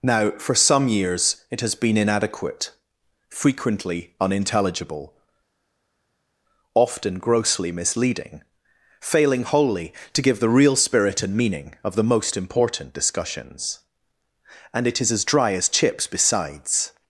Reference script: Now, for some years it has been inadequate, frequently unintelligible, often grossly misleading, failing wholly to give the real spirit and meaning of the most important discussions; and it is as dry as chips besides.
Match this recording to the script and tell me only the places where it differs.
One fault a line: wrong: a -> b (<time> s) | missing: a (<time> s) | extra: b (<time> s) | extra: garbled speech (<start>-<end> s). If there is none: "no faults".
no faults